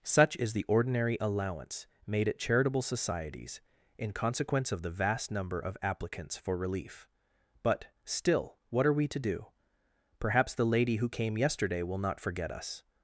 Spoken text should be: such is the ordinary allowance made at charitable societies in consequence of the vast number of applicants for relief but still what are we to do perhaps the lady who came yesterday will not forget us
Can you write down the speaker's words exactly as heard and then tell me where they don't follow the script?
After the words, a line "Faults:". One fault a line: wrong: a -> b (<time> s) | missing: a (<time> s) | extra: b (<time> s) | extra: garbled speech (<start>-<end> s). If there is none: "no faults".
such is the ordinary allowance made at charitable societies in consequence of the vast number of applicants for relief but still what are we to do perhaps the lady who came yesterday will not forget us
Faults:
no faults